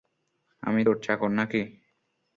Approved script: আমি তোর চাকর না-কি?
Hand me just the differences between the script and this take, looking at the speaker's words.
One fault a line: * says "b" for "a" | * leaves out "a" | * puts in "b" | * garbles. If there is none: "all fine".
all fine